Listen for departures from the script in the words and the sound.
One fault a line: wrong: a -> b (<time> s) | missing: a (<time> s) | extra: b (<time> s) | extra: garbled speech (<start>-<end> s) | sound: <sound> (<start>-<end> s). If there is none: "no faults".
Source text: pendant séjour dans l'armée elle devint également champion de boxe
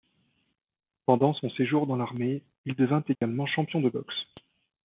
extra: son (1.4 s)
wrong: elle -> il (2.6 s)
sound: dropout (3.2-3.2 s)